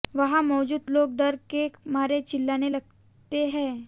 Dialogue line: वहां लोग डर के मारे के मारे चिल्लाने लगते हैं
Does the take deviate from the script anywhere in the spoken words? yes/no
yes